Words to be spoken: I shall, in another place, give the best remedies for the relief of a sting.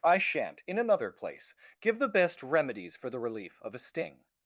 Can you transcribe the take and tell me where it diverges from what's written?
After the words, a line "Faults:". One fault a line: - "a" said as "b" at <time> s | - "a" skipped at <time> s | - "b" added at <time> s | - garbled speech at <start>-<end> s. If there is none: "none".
I shan't, in another place, give the best remedies for the relief of a sting.
Faults:
- "shall" said as "shan't" at 0.2 s